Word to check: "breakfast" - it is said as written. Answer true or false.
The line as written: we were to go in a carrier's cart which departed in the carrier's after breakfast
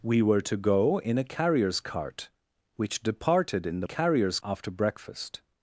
true